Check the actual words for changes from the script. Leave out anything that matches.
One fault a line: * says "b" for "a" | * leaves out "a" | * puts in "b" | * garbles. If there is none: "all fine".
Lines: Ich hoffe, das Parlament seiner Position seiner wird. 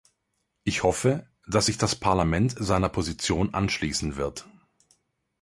* puts in "dass sich"
* says "anschließen" for "seiner"